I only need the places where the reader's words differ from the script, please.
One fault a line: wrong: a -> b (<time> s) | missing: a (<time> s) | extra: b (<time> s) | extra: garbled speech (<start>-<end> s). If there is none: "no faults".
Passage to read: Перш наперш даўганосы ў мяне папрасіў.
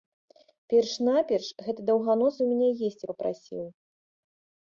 extra: гэты (1.7 s)
extra: есці (2.9 s)